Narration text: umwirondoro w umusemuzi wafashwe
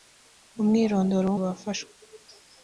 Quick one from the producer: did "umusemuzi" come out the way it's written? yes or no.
no